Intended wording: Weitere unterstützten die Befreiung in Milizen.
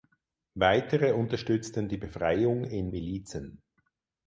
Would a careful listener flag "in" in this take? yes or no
no